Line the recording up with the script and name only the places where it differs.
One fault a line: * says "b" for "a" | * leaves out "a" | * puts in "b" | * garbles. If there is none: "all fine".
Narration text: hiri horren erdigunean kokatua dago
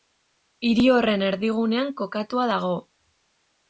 all fine